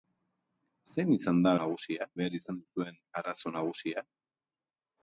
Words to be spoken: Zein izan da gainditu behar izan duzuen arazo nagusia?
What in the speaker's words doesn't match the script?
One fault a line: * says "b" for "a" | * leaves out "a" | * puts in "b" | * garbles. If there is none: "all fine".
* says "nagusia" for "gainditu"